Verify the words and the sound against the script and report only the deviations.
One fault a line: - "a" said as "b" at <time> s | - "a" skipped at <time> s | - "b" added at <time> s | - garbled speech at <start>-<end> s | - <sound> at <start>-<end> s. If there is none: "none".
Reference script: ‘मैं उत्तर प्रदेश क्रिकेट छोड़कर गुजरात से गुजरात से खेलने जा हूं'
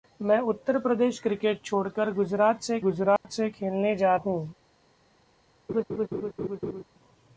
- dropout at 3.2-3.2 s
- laugh at 5.7-6.8 s